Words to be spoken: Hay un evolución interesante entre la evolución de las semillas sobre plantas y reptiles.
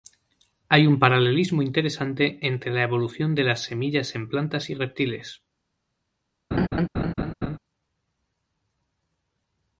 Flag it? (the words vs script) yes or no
yes